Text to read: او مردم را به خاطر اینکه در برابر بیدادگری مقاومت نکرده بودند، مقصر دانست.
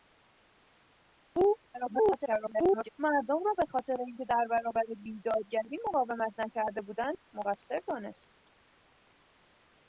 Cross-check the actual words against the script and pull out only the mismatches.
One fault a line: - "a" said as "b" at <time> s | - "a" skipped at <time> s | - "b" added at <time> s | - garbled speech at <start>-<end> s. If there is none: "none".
- garbled speech at 1.7-2.9 s